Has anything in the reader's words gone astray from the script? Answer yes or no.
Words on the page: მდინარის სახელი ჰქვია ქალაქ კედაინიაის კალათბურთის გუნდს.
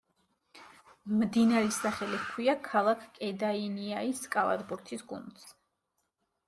no